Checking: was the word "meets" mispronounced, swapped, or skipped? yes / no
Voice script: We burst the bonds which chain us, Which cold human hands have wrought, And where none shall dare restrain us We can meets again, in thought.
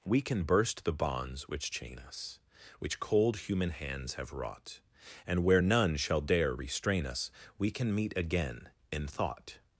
yes